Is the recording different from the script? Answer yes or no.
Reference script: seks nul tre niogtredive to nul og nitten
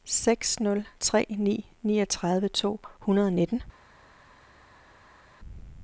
yes